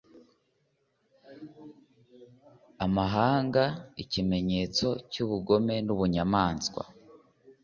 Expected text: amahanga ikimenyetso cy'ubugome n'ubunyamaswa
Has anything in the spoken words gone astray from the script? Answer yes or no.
no